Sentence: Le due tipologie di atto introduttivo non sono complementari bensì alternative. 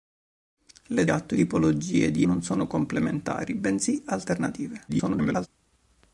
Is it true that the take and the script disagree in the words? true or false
true